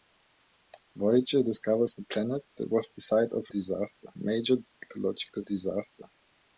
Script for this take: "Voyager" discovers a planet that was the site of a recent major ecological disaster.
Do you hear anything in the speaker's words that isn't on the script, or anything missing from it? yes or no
yes